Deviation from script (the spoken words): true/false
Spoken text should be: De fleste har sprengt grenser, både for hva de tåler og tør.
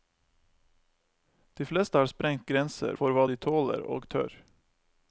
true